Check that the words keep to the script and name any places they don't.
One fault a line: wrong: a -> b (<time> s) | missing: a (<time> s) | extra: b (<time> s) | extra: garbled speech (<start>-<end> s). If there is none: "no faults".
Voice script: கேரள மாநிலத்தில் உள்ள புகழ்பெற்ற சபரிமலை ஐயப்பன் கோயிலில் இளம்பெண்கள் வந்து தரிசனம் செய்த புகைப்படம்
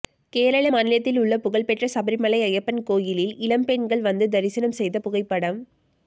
no faults